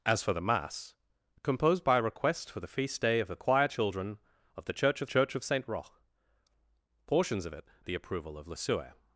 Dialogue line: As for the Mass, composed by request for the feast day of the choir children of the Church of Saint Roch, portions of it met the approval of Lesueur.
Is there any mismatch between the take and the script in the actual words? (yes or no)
yes